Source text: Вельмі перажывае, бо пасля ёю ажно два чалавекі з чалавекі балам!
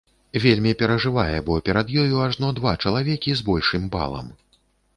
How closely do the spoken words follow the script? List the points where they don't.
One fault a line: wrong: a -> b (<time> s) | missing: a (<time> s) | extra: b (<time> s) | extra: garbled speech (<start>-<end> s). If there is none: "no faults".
wrong: пасля -> перад (1.7 s)
wrong: чалавекі -> большым (3.5 s)